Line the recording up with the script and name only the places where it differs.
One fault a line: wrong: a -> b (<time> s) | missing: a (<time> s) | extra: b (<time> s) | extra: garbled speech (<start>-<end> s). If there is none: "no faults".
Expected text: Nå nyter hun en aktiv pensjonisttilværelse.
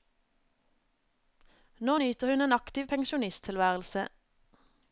no faults